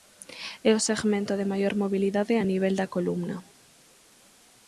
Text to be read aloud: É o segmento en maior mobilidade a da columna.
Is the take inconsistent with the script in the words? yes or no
yes